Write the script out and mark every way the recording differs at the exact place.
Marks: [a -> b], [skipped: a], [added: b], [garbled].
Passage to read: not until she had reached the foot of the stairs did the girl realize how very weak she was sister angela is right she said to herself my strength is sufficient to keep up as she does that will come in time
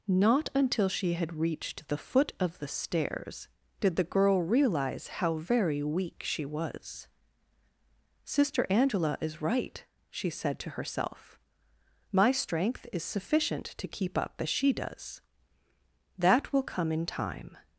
not until she had reached the foot of the stairs did the girl realize how very weak she was sister angela is right she said to herself my strength is sufficient to keep up as she does that will come in time